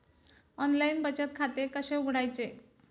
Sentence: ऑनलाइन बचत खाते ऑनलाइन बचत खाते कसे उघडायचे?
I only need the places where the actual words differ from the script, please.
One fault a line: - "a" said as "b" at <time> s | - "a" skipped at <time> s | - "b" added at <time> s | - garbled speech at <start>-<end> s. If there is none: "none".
- "ऑनलाइन बचत खाते" skipped at 1.7 s